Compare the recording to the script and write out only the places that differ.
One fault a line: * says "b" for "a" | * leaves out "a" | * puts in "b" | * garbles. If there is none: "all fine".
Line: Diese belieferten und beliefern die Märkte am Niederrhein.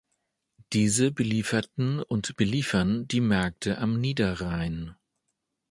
all fine